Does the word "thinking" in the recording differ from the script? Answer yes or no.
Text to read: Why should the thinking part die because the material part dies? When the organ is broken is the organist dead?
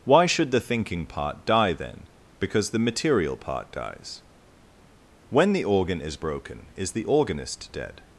no